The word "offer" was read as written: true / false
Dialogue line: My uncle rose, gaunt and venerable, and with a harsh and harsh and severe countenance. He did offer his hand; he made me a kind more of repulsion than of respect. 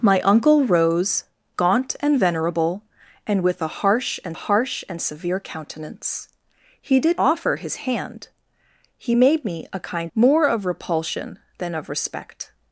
true